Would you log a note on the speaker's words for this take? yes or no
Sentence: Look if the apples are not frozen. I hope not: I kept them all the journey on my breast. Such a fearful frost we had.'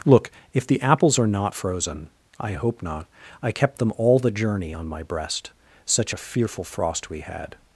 no